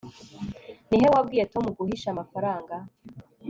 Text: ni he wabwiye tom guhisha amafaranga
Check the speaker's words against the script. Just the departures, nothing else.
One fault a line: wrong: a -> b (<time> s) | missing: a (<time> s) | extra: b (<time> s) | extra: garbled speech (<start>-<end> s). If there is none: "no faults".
no faults